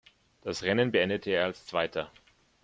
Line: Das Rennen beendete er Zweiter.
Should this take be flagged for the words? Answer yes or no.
yes